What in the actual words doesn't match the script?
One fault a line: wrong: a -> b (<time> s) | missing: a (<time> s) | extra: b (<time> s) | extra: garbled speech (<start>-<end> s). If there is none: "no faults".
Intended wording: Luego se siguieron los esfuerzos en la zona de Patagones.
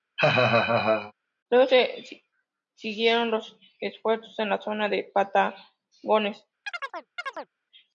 no faults